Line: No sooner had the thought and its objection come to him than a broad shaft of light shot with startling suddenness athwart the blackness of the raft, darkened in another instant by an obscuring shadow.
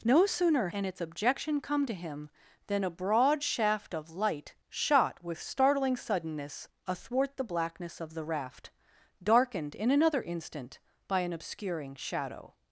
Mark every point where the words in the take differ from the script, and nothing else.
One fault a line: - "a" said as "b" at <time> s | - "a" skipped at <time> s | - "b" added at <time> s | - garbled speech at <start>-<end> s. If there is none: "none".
- "had the thought" skipped at 0.7 s